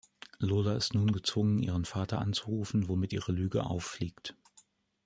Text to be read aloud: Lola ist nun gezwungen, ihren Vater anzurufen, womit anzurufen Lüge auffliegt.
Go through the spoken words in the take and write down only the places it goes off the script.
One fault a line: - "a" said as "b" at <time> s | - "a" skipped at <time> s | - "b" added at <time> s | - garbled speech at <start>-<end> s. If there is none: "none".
- "anzurufen" said as "ihre" at 3.1 s